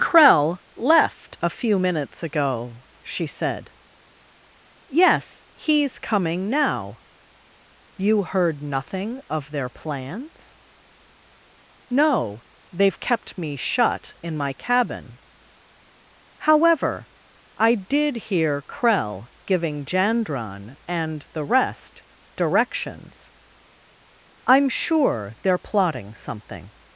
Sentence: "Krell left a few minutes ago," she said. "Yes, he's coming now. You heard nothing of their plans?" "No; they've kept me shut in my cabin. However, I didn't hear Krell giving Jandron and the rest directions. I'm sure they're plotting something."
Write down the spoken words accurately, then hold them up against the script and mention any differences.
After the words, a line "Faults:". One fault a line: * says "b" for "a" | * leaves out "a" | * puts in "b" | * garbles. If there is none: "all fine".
"Krell left a few minutes ago," she said. "Yes, he's coming now. You heard nothing of their plans?" "No; they've kept me shut in my cabin. However, I did hear Krell giving Jandron and the rest directions. I'm sure they're plotting something."
Faults:
* says "did" for "didn't"